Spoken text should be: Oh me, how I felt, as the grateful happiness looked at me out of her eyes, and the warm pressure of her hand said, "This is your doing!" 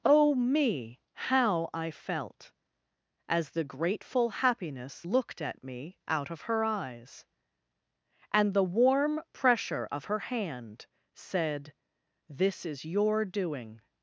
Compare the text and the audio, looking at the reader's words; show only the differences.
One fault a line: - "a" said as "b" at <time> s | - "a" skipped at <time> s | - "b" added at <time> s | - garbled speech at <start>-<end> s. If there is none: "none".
none